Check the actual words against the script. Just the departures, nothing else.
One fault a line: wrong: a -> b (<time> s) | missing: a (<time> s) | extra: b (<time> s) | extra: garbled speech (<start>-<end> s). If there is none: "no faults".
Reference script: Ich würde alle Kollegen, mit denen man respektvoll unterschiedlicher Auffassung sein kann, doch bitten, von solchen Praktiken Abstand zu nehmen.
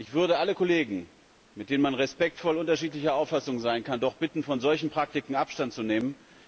no faults